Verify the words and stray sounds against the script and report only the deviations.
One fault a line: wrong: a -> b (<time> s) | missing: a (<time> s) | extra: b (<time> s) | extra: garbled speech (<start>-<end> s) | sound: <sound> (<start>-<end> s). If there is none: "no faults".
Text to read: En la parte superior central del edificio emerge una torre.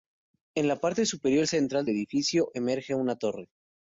missing: del (1.9 s)